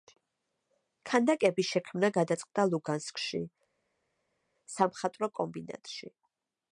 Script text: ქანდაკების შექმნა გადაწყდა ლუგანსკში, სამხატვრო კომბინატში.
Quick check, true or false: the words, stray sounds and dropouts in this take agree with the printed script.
true